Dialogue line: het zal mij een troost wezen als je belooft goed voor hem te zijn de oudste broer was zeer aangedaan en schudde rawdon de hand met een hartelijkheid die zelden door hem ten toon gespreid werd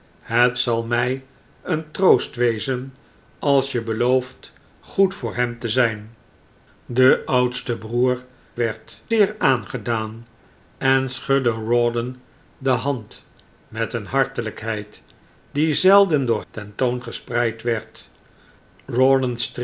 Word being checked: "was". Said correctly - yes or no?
no